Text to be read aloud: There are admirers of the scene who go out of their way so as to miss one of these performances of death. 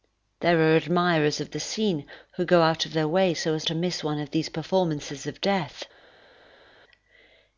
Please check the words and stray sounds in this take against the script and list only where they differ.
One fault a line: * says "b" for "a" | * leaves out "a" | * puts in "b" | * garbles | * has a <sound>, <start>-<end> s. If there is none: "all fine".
all fine